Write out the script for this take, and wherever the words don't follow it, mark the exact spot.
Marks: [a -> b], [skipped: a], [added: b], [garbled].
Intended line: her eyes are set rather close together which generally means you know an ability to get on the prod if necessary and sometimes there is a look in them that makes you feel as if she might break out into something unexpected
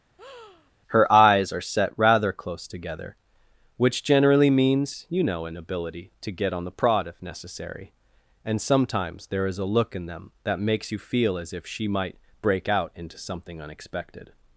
her eyes are set rather close together which generally means you know an ability to get on the prod if necessary and sometimes there is a look in them that makes you feel as if she might break out into something unexpected